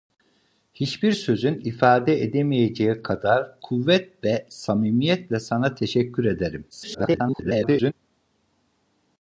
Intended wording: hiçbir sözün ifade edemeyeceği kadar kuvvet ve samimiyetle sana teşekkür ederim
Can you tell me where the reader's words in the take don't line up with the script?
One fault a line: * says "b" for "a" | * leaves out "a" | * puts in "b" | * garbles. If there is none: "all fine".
* garbles